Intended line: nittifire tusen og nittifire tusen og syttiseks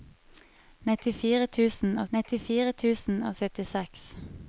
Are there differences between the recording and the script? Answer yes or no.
no